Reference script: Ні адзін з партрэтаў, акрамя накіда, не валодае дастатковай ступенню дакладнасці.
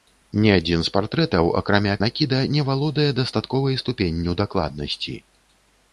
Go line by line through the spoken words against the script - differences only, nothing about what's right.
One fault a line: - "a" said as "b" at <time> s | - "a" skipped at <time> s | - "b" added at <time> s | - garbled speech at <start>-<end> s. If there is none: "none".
none